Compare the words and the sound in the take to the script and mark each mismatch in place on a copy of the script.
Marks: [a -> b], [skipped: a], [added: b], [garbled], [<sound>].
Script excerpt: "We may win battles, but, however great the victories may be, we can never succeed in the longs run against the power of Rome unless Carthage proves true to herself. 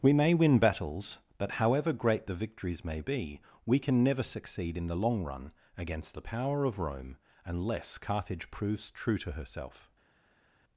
"We may win battles, but, however great the victories may be, we can never succeed in the [longs -> long] run against the power of Rome unless Carthage proves true to herself.